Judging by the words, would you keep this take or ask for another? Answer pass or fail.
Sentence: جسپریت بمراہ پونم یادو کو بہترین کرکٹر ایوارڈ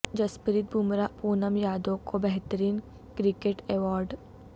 pass